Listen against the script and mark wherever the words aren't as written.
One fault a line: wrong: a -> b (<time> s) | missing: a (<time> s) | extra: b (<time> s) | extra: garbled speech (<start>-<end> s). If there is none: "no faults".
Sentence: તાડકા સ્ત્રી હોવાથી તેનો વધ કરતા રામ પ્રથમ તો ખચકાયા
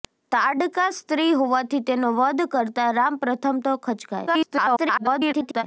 extra: garbled speech (4.3-5.6 s)